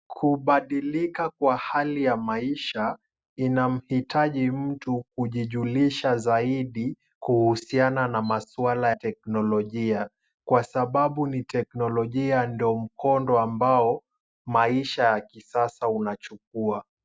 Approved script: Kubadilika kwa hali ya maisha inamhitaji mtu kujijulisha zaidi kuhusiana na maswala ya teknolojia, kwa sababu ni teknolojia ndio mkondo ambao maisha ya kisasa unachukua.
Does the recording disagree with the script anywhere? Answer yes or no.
yes